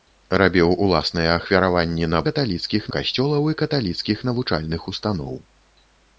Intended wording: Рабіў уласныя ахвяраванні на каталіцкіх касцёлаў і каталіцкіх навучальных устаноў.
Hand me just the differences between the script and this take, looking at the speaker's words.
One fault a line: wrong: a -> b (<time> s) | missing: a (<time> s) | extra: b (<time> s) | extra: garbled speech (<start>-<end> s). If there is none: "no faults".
no faults